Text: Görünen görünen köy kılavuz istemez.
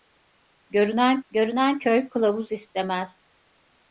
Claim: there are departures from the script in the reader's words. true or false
false